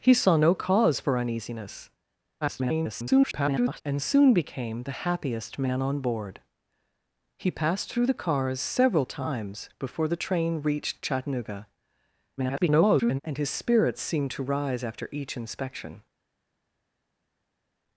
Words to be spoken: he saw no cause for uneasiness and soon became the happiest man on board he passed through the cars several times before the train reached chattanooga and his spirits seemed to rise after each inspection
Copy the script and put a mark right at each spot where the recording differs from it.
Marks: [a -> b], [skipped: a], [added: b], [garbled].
he saw no cause for uneasiness [garbled] and soon became the happiest man on board he passed through the cars several times before the train reached chattanooga [garbled] and his spirits seemed to rise after each inspection